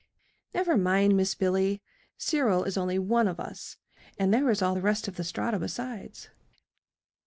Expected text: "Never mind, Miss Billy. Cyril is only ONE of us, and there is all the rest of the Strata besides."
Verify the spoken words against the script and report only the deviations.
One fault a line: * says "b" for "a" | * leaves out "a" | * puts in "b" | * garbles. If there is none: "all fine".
all fine